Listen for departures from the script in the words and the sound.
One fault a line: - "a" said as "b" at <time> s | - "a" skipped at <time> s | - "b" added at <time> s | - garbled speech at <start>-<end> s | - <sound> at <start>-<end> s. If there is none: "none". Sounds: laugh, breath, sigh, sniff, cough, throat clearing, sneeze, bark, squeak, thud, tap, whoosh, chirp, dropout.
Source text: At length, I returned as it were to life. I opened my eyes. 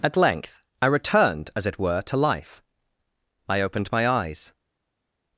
none